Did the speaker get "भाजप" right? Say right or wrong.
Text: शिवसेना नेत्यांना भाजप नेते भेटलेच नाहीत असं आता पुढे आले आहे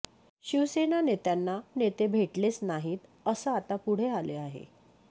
wrong